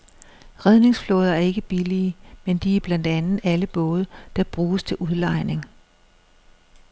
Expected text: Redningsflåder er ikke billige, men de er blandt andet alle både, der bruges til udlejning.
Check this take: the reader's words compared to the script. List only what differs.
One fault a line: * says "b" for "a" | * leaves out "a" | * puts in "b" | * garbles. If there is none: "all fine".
all fine